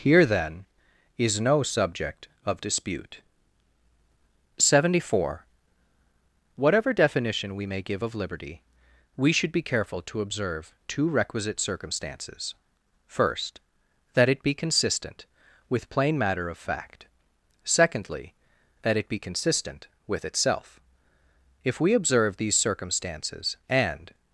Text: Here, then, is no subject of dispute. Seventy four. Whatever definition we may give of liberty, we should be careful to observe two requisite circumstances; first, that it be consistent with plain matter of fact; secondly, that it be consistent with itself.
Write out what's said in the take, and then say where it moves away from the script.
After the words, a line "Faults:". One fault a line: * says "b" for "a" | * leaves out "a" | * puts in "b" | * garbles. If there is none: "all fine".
Here, then, is no subject of dispute. Seventy four. Whatever definition we may give of liberty, we should be careful to observe two requisite circumstances; first, that it be consistent with plain matter of fact; secondly, that it be consistent with itself. If we observe these circumstances, and
Faults:
* puts in "If we observe these circumstances and"